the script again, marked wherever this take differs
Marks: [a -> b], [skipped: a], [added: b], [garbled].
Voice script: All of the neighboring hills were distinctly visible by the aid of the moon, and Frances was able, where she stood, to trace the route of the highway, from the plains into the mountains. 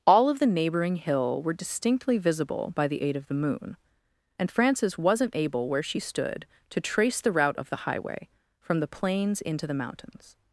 All of the neighboring [hills -> hill] were distinctly visible by the aid of the moon, and Frances [was -> wasn't] able, where she stood, to trace the route of the highway, from the plains into the mountains.